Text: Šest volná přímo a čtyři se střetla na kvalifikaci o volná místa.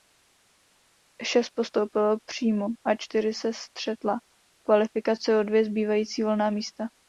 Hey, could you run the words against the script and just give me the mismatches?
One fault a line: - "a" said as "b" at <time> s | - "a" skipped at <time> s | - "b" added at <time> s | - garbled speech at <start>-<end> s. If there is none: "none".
- "volná" said as "postoupilo" at 1.6 s
- "na" said as "v" at 4.2 s
- "dvě zbývající" added at 5.4 s